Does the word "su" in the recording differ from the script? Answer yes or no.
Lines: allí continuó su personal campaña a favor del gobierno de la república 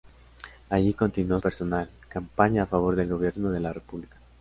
yes